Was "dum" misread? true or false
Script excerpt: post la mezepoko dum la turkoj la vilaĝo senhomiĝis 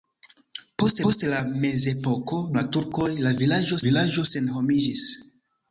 true